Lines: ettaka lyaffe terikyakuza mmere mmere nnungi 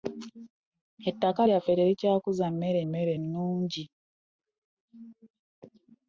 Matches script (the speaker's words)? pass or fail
pass